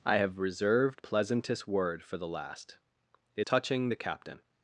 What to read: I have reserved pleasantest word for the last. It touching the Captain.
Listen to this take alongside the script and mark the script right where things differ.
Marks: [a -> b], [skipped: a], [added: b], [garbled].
I have reserved pleasantest word for the last. It touching the Captain.